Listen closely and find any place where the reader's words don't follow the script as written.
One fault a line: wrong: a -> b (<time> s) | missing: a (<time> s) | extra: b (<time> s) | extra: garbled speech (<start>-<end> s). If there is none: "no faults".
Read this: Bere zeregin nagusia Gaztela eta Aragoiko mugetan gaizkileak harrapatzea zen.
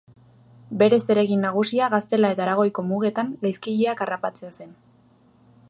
no faults